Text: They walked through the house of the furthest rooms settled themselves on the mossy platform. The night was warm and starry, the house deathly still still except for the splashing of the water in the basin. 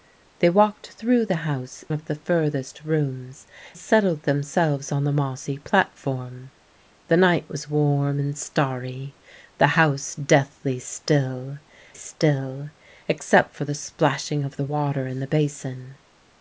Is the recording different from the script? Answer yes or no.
no